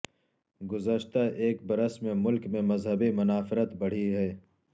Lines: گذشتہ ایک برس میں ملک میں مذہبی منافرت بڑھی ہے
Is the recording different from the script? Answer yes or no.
no